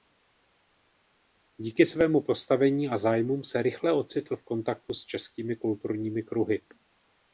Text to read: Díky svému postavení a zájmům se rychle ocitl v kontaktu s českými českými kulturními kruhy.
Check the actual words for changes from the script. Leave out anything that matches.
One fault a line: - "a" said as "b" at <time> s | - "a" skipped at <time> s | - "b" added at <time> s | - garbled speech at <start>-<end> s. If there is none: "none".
- "českými" skipped at 5.5 s